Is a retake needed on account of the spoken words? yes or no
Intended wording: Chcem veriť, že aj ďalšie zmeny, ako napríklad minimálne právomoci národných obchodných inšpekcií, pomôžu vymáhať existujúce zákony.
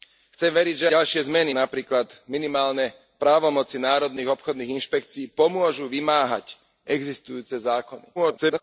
yes